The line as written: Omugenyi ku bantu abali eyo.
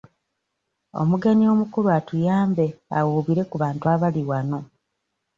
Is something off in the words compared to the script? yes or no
yes